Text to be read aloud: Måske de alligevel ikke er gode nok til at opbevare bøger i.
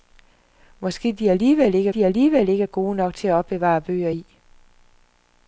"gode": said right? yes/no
yes